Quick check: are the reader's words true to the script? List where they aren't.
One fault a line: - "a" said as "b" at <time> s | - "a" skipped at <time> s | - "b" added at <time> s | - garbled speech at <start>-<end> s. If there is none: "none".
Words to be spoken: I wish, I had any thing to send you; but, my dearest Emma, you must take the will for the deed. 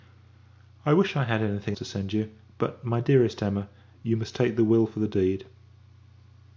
none